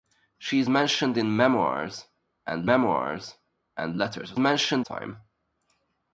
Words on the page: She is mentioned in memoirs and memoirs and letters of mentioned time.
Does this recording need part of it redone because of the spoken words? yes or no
no